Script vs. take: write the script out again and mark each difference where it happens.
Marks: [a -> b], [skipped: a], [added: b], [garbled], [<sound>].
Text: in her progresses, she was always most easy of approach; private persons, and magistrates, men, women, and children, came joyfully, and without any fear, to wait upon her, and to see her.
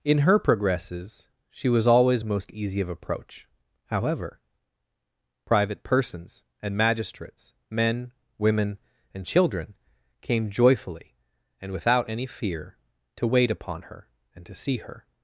in her progresses, she was always most easy of approach; [added: however] private persons, and magistrates, men, women, and children, came joyfully, and without any fear, to wait upon her, and to see her.